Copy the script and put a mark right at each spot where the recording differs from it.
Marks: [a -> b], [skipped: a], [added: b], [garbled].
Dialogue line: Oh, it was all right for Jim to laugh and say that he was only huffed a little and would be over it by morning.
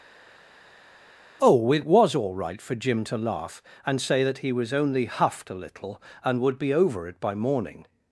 Oh, it was all right for Jim to laugh and say that he was only huffed a little and would be over it by morning.